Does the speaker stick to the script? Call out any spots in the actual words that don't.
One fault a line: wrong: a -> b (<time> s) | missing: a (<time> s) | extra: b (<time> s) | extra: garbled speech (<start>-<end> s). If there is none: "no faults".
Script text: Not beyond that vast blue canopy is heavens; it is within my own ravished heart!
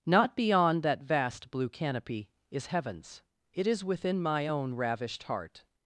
no faults